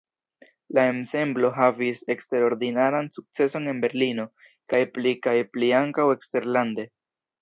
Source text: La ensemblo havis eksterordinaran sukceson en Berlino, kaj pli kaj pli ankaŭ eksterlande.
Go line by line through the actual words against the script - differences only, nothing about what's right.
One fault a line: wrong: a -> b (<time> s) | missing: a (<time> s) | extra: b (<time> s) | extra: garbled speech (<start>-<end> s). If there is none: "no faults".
no faults